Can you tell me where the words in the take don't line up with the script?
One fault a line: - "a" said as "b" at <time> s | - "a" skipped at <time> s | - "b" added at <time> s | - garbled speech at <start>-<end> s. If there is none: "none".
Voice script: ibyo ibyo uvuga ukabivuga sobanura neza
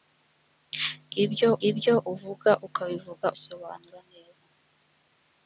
none